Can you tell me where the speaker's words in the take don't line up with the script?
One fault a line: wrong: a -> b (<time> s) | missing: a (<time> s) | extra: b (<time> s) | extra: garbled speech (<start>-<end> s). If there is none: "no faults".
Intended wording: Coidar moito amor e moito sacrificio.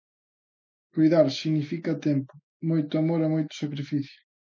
extra: significa tempo (1.3 s)